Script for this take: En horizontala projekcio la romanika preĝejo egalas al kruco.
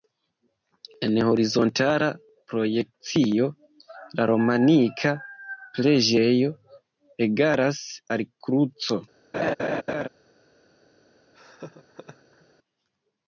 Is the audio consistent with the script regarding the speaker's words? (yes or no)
yes